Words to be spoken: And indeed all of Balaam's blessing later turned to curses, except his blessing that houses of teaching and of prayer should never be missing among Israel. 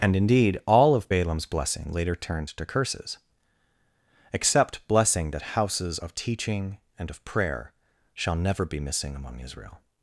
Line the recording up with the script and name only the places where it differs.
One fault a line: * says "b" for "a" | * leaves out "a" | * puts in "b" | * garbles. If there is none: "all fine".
* leaves out "his"
* says "shall" for "should"